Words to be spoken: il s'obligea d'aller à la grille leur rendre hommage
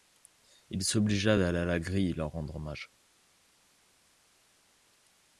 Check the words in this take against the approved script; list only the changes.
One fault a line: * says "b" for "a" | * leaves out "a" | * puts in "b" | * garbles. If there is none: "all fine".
all fine